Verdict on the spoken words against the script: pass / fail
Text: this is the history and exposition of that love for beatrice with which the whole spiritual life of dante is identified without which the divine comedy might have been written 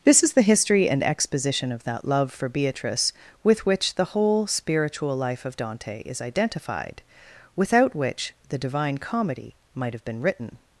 pass